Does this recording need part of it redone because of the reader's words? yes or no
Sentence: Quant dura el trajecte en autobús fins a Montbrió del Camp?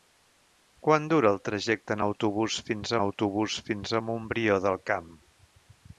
yes